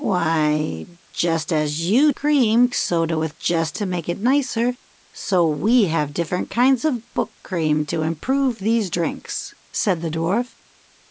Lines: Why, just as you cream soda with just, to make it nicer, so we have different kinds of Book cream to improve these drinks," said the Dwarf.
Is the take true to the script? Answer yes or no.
yes